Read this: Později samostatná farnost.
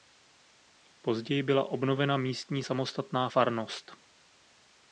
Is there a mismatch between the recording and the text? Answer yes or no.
yes